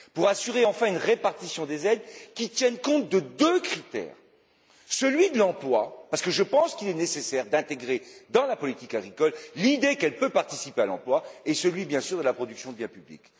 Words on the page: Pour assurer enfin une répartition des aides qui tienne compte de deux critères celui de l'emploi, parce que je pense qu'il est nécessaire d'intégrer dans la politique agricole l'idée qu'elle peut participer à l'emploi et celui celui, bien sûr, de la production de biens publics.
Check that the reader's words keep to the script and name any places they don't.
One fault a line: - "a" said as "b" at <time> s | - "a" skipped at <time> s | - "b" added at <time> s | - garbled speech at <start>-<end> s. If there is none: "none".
- "celui" skipped at 11.8 s